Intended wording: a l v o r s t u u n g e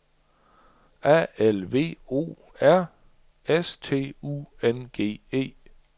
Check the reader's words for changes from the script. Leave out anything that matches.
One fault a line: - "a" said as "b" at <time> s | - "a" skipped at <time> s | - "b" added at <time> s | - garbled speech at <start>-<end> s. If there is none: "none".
- "u" skipped at 4.5 s